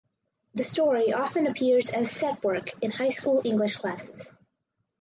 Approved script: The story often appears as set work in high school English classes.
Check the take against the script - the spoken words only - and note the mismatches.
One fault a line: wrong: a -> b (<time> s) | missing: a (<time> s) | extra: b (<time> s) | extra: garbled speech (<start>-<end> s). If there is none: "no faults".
no faults